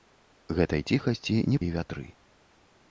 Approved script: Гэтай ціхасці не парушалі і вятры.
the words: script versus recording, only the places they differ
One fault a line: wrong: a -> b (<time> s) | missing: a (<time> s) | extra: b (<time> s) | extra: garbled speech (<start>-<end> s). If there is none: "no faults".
missing: парушалі (1.6 s)